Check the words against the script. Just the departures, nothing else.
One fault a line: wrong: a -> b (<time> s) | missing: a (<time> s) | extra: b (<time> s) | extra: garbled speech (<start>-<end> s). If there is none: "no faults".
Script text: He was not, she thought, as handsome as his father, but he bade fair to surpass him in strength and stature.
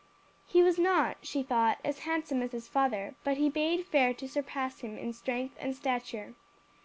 no faults